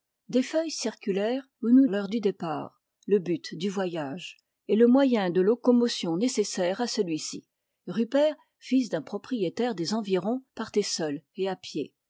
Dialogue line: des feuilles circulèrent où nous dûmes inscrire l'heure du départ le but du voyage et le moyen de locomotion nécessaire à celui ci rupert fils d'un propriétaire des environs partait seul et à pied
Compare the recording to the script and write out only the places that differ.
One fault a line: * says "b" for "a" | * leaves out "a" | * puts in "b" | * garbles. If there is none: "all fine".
* leaves out "dûmes inscrire"